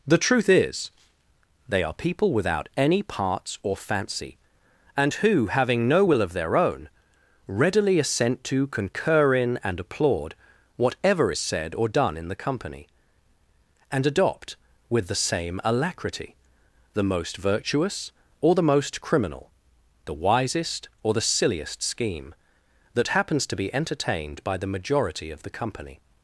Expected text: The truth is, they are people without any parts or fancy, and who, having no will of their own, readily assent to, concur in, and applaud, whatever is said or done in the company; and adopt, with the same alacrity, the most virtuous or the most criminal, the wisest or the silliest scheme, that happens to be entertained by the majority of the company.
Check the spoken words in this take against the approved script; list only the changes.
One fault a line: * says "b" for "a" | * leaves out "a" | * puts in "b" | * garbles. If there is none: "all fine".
all fine